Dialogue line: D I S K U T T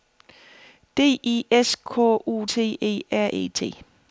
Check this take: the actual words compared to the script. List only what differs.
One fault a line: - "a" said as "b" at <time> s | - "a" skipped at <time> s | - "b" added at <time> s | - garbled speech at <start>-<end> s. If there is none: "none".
- "E R E" added at 2.8 s